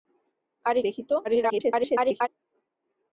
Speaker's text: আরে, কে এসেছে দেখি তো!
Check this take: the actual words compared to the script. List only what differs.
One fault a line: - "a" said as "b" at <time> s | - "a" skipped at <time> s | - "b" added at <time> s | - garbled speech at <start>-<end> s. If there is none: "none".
- "কে এসেছে" skipped at 0.8 s
- garbled speech at 1.2-2.3 s